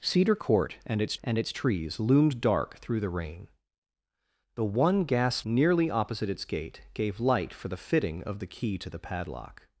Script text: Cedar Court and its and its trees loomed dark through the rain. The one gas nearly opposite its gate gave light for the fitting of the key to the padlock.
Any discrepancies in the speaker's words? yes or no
no